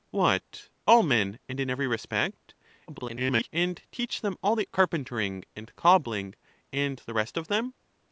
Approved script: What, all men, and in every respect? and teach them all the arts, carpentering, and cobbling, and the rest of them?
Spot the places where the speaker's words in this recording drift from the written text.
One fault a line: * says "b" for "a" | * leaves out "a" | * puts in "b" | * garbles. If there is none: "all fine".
* garbles
* leaves out "arts"